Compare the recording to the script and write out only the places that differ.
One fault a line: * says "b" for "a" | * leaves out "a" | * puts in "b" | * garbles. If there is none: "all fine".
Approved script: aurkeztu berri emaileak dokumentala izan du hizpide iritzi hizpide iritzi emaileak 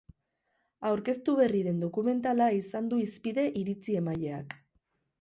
* says "den" for "emaileak"
* leaves out "hizpide iritzi"